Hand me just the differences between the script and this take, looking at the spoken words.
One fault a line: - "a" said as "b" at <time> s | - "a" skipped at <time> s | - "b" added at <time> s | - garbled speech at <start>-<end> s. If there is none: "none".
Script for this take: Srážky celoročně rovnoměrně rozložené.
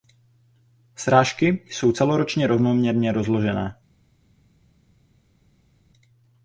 - "jsou" added at 1.7 s